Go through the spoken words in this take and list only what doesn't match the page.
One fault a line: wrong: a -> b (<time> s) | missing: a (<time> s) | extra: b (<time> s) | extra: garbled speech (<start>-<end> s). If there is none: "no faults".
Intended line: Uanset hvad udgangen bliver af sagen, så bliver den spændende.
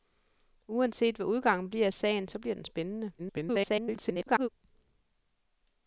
extra: garbled speech (3.2-4.5 s)